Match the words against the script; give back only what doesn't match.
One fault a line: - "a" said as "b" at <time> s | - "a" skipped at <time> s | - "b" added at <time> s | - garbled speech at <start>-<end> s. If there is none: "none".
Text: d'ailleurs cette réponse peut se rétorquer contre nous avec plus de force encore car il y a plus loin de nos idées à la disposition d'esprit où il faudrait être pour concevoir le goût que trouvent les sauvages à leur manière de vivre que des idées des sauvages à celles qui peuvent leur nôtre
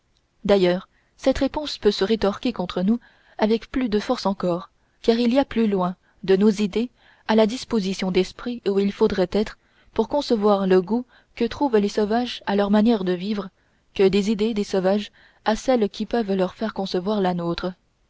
- "faire concevoir la" added at 16.5 s